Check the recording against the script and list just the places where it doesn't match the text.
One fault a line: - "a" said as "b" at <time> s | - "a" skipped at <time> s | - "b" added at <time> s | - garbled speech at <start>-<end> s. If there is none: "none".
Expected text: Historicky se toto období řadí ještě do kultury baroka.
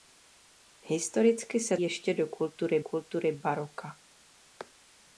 - "toto období řadí" skipped at 1.8 s
- "kultury" added at 2.8 s